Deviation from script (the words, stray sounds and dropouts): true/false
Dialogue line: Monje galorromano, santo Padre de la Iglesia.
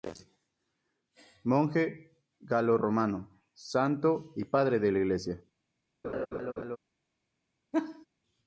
true